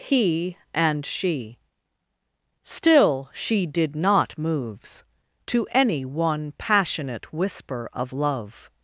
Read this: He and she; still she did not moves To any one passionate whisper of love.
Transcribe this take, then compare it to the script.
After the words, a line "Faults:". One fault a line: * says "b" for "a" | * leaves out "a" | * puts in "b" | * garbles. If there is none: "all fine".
He and she; still she did not moves To any one passionate whisper of love.
Faults:
all fine